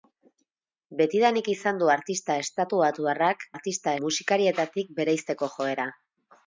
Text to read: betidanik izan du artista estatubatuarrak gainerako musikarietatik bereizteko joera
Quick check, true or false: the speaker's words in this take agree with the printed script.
false